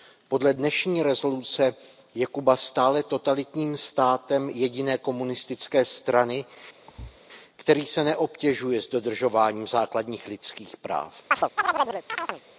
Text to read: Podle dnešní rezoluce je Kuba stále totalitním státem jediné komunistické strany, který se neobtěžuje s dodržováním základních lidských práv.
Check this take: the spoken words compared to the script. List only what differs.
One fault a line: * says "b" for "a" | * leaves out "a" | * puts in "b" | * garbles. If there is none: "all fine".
all fine